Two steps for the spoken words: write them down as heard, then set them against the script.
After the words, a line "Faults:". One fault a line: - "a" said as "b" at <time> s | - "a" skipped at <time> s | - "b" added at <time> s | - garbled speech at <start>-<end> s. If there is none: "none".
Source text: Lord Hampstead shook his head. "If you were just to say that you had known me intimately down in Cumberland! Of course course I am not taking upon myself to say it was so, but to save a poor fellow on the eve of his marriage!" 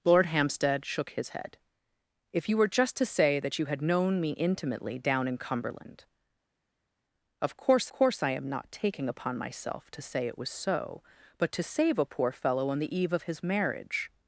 Lord Hampstead shook his head. "If you were just to say that you had known me intimately down in Cumberland! Of course course I am not taking upon myself to say it was so, but to save a poor fellow on the eve of his marriage!"
Faults:
none